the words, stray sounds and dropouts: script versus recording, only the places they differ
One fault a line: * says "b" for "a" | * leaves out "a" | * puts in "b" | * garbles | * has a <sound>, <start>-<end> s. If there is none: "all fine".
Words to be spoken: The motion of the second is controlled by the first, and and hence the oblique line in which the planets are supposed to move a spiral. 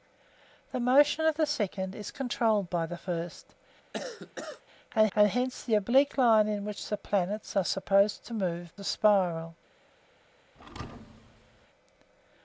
* has a cough, 3.9-4.6 s
* has a thud, 10.5-11.7 s